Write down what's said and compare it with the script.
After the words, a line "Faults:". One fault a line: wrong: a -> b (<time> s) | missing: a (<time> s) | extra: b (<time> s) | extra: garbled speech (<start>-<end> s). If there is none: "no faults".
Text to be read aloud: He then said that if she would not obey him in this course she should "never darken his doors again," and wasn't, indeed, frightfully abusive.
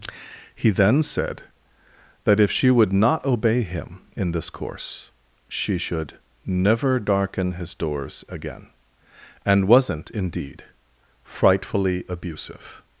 He then said that if she would not obey him in this course she should "never darken his doors again," and wasn't, indeed, frightfully abusive.
Faults:
no faults